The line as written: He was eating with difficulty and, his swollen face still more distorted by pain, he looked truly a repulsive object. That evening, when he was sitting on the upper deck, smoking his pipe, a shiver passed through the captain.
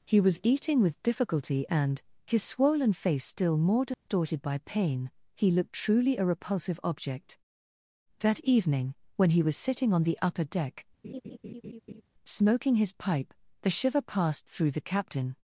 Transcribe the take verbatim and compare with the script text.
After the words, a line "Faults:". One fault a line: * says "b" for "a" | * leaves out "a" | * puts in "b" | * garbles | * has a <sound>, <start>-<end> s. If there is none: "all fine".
He was eating with difficulty and, his swollen face still more distorted by pain, he looked truly a repulsive object. That evening, when he was sitting on the upper deck, smoking his pipe, the shiver passed through the captain.
Faults:
* has a dropout, 3.9-4.1 s
* has a laugh, 11.0-12.0 s
* says "the" for "a"